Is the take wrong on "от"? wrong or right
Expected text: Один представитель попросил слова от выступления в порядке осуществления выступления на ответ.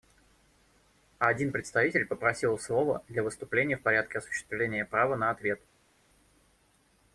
wrong